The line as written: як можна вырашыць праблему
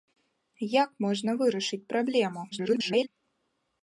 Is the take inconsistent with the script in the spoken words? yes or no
yes